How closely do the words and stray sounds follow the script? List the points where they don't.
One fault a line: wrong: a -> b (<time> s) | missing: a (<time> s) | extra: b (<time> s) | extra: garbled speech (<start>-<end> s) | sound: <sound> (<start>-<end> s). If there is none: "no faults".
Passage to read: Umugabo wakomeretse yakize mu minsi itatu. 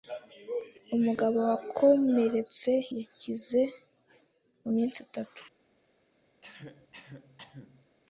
sound: cough (6.4-7.9 s)